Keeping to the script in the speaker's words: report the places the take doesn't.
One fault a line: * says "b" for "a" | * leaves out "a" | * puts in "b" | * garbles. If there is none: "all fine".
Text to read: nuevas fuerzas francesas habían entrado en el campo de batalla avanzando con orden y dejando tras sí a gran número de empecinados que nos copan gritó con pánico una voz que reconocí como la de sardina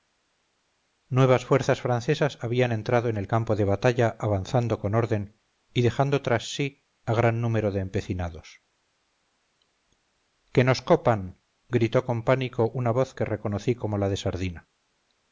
all fine